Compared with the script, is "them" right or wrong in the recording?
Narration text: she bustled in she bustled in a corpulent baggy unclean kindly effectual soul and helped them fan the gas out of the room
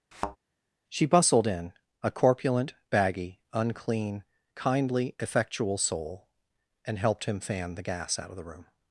wrong